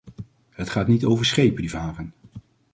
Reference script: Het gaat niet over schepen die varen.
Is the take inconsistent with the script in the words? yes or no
no